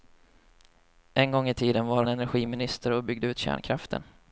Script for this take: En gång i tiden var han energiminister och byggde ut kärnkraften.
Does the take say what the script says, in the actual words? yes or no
no